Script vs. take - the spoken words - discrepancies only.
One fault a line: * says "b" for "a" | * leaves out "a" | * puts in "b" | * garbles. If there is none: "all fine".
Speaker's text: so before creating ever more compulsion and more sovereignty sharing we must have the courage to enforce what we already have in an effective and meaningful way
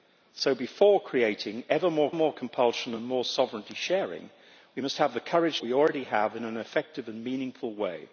* puts in "more"
* leaves out "to enforce what"